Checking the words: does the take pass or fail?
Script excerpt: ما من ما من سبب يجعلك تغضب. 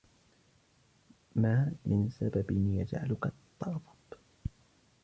fail